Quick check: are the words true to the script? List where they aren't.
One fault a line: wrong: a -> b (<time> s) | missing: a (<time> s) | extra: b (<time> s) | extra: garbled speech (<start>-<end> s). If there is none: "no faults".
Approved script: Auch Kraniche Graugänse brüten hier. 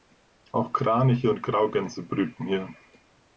extra: und (1.3 s)